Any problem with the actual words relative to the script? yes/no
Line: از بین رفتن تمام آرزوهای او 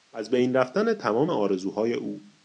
no